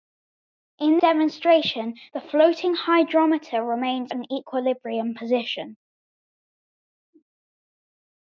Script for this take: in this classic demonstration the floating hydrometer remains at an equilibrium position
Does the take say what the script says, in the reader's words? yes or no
no